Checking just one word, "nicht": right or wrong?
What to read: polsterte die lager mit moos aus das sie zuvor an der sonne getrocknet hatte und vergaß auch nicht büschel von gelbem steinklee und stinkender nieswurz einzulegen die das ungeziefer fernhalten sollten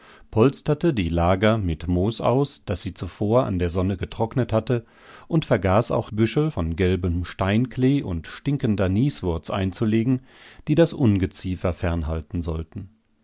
wrong